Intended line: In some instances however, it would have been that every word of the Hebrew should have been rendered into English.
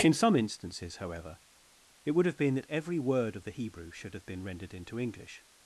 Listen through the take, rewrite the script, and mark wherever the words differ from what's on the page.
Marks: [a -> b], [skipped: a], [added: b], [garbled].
In some instances however, it would have been that every word of the Hebrew should have been rendered into English.